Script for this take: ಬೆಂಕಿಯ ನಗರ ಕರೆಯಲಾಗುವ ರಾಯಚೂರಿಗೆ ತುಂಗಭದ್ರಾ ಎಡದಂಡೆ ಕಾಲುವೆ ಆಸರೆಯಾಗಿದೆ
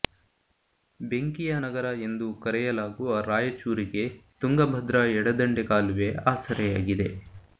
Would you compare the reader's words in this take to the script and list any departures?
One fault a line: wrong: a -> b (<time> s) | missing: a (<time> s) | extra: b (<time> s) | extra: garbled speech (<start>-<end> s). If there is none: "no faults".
extra: ಎಂದು (2.0 s)